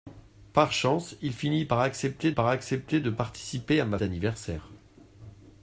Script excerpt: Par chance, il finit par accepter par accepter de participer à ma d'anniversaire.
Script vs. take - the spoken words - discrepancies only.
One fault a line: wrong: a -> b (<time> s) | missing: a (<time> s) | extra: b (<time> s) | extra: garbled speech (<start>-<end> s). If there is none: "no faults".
no faults